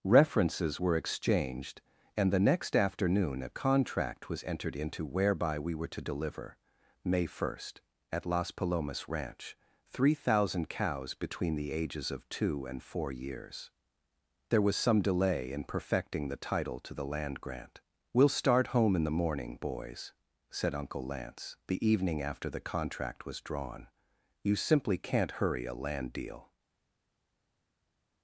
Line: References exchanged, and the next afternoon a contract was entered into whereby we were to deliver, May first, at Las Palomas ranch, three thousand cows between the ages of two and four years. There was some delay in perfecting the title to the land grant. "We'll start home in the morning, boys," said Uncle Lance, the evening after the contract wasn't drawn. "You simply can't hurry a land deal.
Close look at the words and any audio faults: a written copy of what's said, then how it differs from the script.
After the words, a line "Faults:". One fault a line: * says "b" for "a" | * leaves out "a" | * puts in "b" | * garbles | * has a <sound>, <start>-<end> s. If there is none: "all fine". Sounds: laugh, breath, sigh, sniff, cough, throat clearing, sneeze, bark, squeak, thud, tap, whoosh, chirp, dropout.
References were exchanged, and the next afternoon a contract was entered into whereby we were to deliver, May first, at Las Palomas ranch, three thousand cows between the ages of two and four years. There was some delay in perfecting the title to the land grant. "We'll start home in the morning, boys," said Uncle Lance, the evening after the contract was drawn. "You simply can't hurry a land deal.
Faults:
* puts in "were"
* says "was" for "wasn't"